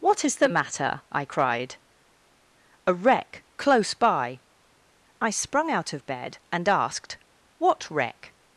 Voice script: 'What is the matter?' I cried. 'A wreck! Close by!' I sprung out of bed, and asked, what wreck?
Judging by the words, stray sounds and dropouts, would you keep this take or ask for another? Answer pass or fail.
pass